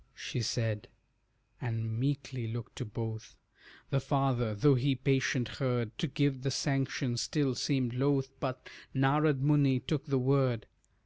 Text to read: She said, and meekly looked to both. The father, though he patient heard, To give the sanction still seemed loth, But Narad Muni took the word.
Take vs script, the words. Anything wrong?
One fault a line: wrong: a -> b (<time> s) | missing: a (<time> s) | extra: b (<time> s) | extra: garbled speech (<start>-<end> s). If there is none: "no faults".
no faults